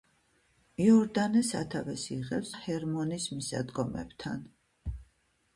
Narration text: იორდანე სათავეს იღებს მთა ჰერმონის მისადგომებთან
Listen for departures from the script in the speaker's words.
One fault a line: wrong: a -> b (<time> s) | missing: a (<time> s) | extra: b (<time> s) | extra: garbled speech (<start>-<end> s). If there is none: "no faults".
missing: მთა (2.5 s)